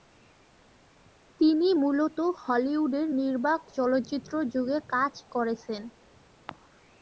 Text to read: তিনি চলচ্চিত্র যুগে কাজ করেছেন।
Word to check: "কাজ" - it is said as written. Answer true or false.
true